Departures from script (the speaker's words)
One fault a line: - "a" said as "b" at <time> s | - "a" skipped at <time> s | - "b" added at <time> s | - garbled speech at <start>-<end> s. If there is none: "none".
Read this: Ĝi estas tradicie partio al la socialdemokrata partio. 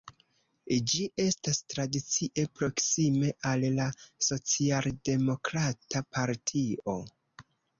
- "partio" said as "proksime" at 2.6 s